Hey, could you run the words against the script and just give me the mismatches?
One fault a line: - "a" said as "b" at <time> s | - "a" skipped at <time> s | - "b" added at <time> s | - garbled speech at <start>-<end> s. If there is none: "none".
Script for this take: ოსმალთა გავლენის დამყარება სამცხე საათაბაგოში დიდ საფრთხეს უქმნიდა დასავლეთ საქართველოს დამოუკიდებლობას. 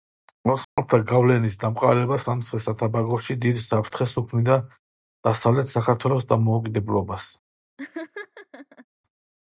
none